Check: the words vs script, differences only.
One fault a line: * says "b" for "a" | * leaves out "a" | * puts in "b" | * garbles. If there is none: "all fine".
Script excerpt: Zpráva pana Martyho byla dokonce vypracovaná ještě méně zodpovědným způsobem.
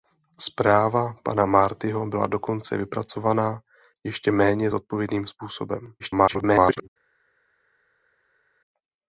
* garbles